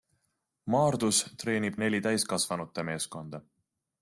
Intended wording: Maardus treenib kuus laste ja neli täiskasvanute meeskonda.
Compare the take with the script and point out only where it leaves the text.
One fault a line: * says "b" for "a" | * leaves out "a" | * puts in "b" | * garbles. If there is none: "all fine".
* leaves out "kuus laste ja"